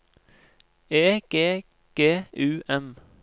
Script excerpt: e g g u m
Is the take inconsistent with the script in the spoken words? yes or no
no